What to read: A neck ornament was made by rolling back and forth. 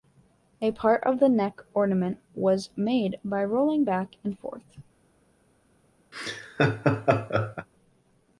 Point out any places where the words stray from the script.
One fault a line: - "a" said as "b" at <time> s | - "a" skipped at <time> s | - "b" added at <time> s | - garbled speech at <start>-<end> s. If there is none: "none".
- "part of the" added at 0.7 s